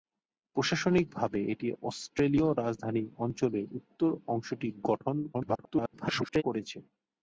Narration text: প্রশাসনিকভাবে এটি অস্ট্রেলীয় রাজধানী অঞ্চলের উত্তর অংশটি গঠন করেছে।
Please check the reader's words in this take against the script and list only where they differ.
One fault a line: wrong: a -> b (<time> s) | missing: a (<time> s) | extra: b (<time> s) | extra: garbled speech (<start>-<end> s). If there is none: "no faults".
extra: garbled speech (5.3-6.4 s)